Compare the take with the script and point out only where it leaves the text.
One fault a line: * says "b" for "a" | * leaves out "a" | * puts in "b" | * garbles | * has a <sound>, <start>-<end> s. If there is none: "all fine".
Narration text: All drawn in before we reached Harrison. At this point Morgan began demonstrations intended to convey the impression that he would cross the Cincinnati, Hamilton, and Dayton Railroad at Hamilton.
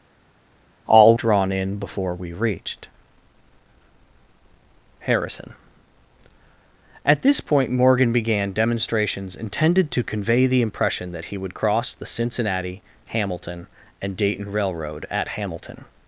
all fine